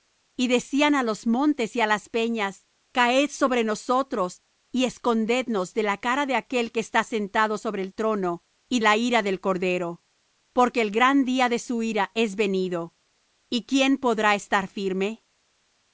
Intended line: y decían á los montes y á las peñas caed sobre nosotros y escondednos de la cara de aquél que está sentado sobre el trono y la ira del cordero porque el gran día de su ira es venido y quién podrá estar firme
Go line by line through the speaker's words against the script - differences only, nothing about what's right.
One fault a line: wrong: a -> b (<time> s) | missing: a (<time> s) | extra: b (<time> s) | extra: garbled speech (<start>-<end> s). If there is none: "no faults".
no faults